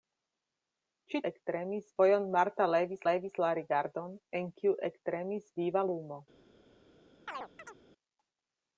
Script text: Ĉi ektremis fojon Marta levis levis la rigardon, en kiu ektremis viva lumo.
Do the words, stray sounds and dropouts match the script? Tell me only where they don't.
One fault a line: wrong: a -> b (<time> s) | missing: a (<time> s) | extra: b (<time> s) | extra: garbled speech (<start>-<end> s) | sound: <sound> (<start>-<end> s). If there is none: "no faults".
sound: chirp (7.3-7.8 s)